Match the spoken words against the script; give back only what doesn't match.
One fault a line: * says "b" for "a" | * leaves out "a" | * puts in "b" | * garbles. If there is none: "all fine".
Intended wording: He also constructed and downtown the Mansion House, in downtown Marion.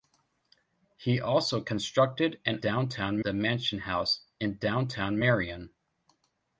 all fine